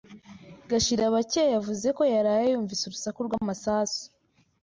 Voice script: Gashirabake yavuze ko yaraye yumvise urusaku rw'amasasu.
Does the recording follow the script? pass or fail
pass